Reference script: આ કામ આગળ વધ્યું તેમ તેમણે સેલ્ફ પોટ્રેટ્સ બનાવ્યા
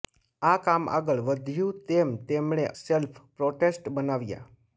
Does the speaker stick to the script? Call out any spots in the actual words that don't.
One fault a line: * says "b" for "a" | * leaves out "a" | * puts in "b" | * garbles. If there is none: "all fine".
all fine